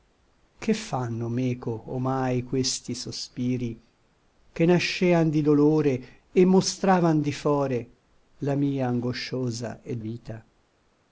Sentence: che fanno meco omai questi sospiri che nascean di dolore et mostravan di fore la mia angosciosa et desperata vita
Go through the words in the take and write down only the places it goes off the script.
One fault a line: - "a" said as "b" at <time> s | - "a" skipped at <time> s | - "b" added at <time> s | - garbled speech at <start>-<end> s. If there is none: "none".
- "desperata" skipped at 10.0 s